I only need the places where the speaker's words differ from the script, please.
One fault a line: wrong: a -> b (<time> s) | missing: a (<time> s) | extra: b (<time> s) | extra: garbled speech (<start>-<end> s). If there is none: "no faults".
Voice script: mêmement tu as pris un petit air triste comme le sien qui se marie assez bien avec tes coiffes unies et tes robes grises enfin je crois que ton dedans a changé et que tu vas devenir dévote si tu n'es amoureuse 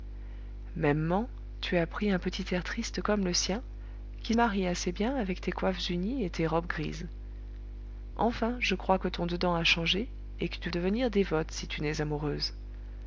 missing: se (4.3 s)
missing: vas (10.7 s)